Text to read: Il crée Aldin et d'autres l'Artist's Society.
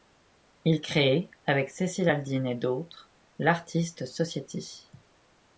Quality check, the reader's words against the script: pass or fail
fail